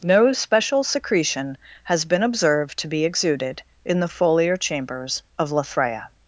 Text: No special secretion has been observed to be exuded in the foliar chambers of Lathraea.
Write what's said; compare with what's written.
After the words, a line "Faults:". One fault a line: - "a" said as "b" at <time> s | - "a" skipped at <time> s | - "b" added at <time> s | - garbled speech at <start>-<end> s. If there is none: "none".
No special secretion has been observed to be exuded in the foliar chambers of Lathraea.
Faults:
none